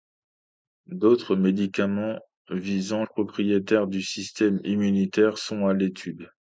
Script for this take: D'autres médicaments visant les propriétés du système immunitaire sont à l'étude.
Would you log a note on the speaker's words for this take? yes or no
yes